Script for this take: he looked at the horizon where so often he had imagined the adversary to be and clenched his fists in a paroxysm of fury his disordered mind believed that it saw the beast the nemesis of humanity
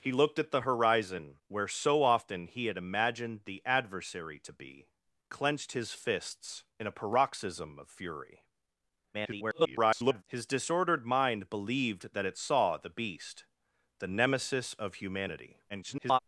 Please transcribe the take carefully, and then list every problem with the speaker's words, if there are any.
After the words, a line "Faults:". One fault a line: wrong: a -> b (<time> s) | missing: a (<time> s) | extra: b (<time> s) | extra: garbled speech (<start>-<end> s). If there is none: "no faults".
he looked at the horizon where so often he had imagined the adversary to be clenched his fists in a paroxysm of fury [garbled] his disordered mind believed that it saw the beast the nemesis of humanity [garbled]
Faults:
missing: and (4.9 s)
extra: garbled speech (9.1-10.2 s)
extra: garbled speech (15.7-16.2 s)